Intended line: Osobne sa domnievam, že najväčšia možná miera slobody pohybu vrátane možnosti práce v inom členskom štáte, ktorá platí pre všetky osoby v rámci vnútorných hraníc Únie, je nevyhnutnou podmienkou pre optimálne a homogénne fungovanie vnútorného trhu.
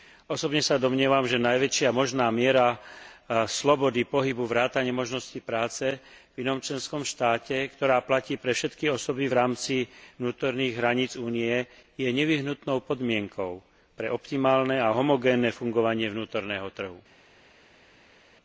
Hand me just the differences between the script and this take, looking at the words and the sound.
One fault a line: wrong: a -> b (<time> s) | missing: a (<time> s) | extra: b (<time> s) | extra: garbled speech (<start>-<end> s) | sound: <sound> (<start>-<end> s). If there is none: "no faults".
no faults